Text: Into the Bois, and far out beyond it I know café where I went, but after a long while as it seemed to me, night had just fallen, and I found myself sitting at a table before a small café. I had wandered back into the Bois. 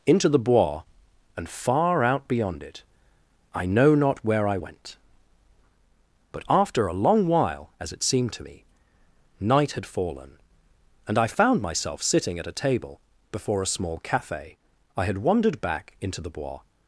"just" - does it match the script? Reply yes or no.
no